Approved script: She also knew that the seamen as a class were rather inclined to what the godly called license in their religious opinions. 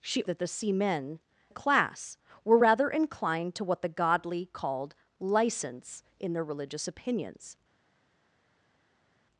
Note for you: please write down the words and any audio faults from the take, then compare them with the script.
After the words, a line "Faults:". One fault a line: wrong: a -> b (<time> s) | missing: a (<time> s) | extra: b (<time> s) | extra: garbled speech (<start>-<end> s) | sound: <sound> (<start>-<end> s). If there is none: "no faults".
She that the seamen a class were rather inclined to what the godly called license in their religious opinions.
Faults:
missing: also knew (0.2 s)
missing: as (1.2 s)